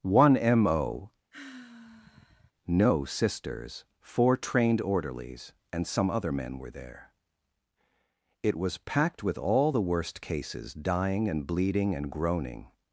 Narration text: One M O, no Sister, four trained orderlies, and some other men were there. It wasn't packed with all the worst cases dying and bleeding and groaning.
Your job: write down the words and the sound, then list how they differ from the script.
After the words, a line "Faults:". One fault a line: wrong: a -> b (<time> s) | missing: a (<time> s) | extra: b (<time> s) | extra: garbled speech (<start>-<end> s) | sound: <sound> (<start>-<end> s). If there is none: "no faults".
One M O, no Sisters, four trained orderlies, and some other men were there. It was packed with all the worst cases dying and bleeding and groaning.
Faults:
sound: sigh (1.3-2.5 s)
wrong: Sister -> Sisters (3.1 s)
wrong: wasn't -> was (8.6 s)